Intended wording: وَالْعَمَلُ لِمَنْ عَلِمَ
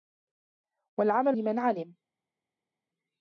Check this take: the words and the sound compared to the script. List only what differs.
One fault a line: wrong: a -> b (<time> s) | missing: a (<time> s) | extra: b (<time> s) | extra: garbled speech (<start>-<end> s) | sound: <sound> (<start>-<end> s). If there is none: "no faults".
no faults